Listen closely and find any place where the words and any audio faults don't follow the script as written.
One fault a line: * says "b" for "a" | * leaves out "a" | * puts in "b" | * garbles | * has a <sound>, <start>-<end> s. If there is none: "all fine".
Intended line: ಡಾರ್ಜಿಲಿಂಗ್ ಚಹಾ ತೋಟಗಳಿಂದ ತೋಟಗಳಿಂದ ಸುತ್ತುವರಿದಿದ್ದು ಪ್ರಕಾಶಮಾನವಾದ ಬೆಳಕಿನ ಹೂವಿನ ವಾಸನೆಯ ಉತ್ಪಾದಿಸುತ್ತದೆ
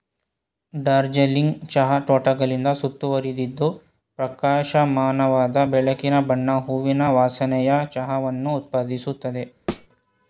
* leaves out "ತೋಟಗಳಿಂದ"
* puts in "ಬಣ್ಣ"
* puts in "ಚಹಾವನ್ನು"
* has a thud, 9.7-9.9 s